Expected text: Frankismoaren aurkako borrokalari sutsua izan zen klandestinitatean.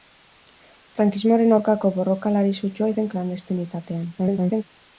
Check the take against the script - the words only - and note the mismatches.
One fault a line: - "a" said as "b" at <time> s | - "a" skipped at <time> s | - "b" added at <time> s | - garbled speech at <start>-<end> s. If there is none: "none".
- "izan" skipped at 2.9 s
- garbled speech at 4.2-4.6 s